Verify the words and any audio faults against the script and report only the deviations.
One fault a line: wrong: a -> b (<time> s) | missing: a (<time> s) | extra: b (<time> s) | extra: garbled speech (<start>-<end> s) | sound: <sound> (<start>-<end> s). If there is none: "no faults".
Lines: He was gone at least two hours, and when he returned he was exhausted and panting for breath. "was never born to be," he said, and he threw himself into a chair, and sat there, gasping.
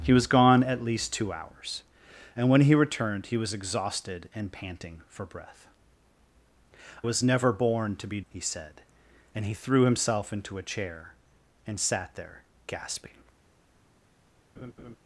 sound: laugh (14.6-15.0 s)